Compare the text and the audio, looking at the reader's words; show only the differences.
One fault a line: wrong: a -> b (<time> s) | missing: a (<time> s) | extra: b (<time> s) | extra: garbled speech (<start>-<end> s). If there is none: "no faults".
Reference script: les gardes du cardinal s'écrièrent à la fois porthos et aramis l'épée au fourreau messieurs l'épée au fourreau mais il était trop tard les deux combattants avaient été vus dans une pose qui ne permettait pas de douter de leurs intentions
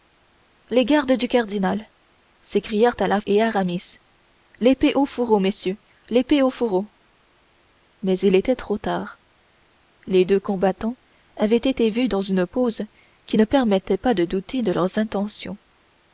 missing: fois porthos (3.2 s)